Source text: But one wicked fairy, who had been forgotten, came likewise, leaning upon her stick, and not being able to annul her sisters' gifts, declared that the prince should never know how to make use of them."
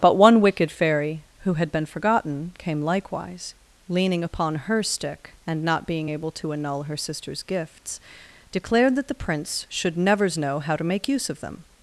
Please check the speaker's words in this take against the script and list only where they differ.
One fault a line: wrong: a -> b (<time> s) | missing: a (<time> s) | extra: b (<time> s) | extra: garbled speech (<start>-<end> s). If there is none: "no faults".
wrong: never -> nevers (10.0 s)